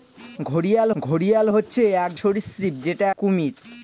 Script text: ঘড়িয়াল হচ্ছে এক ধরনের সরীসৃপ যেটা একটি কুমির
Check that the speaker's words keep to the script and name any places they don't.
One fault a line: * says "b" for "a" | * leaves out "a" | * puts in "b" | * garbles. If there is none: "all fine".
* puts in "ঘড়িয়াল"
* leaves out "ধরনের"
* leaves out "একটি"